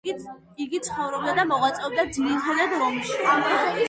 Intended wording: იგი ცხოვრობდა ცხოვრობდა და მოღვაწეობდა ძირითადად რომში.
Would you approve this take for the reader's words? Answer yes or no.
no